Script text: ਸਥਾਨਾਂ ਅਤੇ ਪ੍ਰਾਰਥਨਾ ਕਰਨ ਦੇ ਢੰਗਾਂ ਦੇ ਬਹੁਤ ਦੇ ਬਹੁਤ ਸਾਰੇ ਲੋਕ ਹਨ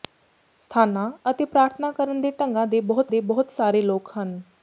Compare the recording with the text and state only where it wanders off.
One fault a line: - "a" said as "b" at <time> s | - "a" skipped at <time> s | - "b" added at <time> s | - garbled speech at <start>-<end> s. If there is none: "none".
none